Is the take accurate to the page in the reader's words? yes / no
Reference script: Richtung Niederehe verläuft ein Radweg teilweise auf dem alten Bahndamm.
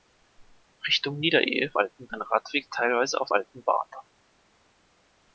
no